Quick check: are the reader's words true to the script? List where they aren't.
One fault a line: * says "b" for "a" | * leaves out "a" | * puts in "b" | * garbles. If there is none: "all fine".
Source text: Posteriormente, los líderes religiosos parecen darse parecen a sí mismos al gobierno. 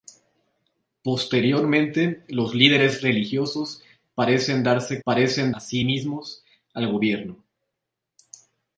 all fine